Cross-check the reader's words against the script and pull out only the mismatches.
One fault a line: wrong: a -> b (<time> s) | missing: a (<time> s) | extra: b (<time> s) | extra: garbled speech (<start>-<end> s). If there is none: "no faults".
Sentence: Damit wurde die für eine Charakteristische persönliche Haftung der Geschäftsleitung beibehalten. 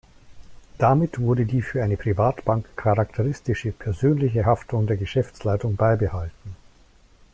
extra: Privatbank (1.9 s)